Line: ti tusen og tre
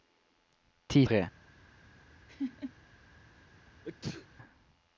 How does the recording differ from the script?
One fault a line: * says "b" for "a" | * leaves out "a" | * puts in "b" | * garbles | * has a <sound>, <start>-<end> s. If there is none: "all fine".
* leaves out "tusen og"
* has a laugh, 2.3-2.7 s
* has a sneeze, 3.8-4.3 s